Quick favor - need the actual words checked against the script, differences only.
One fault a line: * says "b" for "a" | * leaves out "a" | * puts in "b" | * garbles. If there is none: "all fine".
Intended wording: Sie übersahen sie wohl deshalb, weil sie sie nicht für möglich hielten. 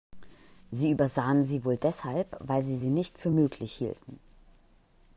all fine